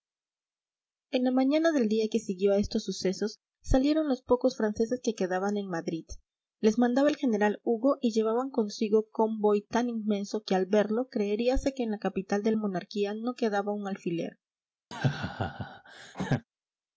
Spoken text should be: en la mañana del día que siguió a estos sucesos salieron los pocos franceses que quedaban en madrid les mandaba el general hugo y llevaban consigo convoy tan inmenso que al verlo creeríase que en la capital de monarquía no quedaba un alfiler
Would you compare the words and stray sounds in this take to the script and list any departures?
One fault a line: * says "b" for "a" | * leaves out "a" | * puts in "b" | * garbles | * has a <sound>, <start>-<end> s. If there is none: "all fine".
* has a laugh, 14.9-16.4 s